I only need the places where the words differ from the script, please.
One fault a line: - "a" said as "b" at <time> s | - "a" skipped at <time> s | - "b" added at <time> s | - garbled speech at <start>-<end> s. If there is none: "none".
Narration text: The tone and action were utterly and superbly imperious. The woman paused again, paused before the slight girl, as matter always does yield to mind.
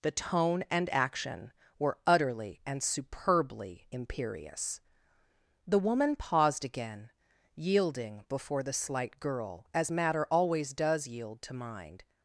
- "paused" said as "yielding" at 7.5 s